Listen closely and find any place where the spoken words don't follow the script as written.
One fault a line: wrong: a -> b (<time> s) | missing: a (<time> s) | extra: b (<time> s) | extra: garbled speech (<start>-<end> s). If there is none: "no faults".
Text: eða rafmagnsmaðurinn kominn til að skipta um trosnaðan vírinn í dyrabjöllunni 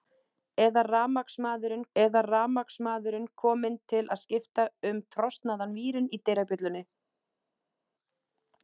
extra: eða rafmagnsmaðurinn (2.0 s)